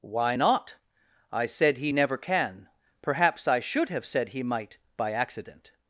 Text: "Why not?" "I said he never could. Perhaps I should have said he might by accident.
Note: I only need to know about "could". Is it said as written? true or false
false